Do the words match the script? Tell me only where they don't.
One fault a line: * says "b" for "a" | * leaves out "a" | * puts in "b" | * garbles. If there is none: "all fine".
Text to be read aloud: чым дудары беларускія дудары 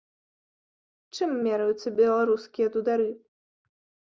* says "мераюцца" for "дудары"